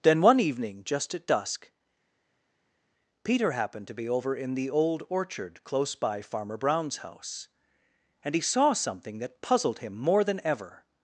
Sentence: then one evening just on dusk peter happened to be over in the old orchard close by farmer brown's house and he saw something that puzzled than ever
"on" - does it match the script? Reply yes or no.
no